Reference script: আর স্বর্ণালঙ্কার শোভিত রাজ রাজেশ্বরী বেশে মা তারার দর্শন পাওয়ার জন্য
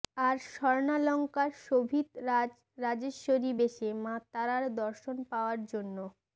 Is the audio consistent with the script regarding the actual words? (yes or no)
yes